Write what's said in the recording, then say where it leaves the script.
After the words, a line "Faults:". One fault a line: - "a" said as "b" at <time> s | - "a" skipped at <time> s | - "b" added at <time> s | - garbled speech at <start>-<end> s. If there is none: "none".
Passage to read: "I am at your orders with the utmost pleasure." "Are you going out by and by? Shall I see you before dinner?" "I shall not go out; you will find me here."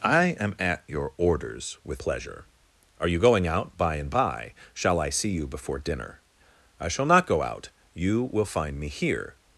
"I am at your orders with pleasure." "Are you going out by and by? Shall I see you before dinner?" "I shall not go out; you will find me here."
Faults:
- "the utmost" skipped at 2.0 s